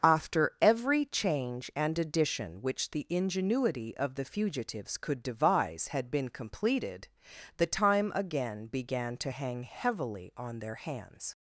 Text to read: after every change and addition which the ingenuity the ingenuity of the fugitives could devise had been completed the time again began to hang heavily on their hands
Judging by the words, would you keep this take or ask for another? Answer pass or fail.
fail